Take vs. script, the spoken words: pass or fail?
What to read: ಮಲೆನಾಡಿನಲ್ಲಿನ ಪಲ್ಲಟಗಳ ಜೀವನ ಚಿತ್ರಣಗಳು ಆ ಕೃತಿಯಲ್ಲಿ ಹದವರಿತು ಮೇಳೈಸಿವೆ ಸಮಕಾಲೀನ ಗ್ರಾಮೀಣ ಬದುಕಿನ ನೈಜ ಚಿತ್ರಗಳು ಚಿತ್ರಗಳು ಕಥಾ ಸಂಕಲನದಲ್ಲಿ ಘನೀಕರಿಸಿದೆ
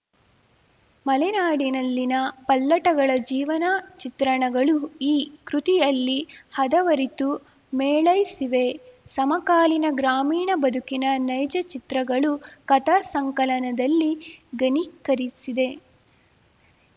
fail